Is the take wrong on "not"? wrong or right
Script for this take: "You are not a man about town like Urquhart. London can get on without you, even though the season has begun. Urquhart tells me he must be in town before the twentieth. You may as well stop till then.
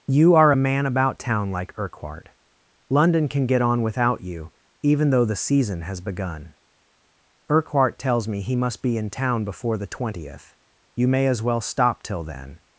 wrong